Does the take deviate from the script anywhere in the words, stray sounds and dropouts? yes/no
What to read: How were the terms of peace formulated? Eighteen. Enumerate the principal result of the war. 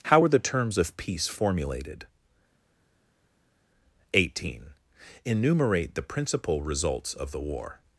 yes